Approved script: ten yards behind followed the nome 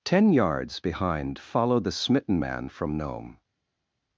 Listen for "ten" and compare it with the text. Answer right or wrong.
right